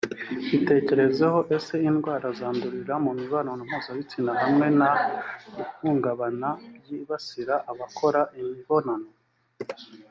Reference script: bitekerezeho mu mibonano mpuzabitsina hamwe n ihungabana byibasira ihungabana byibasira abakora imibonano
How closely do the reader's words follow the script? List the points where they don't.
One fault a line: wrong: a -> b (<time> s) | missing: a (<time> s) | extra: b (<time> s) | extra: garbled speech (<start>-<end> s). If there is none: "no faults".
extra: ese indwara zandurira (1.6 s)
missing: ihungabana byibasira (7.5 s)